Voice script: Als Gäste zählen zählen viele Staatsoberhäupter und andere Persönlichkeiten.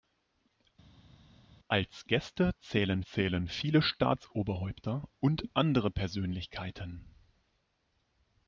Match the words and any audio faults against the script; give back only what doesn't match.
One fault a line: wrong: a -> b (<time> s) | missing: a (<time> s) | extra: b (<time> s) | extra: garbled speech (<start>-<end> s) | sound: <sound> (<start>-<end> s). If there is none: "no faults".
no faults